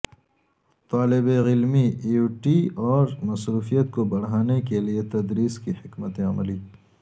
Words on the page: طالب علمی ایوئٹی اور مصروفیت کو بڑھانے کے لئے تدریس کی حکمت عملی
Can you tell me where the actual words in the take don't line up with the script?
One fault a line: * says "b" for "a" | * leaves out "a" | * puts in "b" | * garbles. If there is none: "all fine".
all fine